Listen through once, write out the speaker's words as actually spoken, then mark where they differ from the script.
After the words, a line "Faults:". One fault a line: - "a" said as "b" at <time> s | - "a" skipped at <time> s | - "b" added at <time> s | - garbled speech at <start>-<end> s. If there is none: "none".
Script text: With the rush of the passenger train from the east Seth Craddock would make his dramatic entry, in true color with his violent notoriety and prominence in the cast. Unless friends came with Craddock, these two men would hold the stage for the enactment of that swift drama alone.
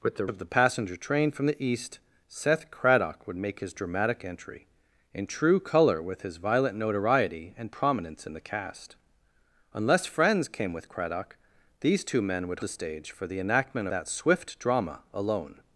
With the of the passenger train from the east Seth Craddock would make his dramatic entry, in true color with his violent notoriety and prominence in the cast. Unless friends came with Craddock, these two men would the stage for the enactment that swift drama alone.
Faults:
- "rush" skipped at 0.2 s
- "hold" skipped at 12.6 s
- "of" skipped at 13.9 s